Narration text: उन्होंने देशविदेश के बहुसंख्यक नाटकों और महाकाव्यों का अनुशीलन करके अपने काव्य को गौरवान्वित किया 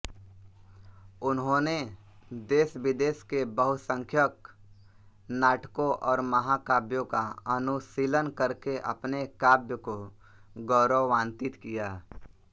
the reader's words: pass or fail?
pass